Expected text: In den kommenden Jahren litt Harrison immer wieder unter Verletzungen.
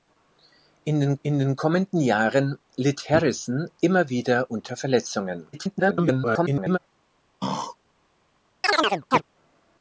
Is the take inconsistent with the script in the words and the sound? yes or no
yes